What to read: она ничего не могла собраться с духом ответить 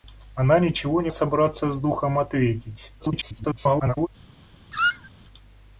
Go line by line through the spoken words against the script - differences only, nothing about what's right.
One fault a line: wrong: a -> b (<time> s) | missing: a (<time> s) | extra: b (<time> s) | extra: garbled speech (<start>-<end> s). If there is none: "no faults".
missing: могла (1.1 s)
extra: garbled speech (3.0-4.1 s)